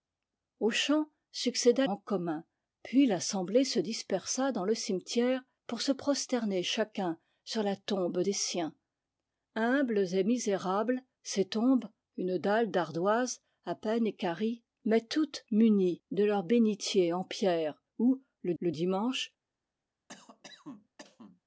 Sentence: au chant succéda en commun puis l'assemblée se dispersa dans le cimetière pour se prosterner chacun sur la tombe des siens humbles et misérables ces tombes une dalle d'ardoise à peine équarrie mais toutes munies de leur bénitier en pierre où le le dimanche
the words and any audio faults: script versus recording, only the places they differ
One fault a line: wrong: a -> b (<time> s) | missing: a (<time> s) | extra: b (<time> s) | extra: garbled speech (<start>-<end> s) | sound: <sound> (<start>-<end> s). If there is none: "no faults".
sound: cough (20.1-21.4 s)